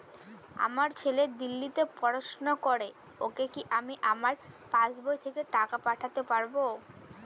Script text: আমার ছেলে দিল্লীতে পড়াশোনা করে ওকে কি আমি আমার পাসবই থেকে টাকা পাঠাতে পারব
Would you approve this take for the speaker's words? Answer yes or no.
yes